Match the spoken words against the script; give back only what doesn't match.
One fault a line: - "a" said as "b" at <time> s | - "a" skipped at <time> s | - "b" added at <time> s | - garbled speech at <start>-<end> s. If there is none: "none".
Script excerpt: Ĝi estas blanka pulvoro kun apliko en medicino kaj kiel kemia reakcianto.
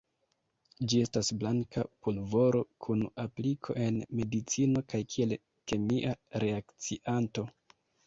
none